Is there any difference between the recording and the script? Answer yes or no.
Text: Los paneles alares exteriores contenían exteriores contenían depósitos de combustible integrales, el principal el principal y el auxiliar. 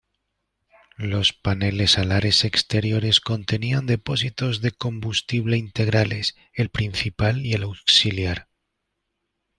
yes